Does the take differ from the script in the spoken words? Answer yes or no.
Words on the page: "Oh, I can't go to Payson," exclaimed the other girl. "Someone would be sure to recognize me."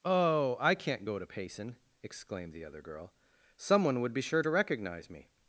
no